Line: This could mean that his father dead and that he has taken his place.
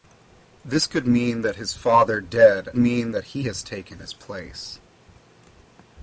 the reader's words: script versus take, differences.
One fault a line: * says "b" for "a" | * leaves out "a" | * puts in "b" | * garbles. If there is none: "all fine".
* says "mean" for "and"